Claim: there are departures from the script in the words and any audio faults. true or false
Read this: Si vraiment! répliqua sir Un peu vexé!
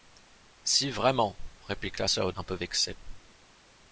false